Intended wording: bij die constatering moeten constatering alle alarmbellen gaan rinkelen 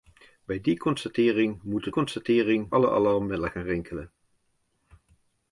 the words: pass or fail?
pass